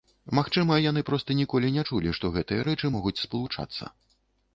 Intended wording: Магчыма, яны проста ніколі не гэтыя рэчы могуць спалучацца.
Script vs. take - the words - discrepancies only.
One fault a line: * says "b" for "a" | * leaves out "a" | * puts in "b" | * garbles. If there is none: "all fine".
* puts in "чулі што"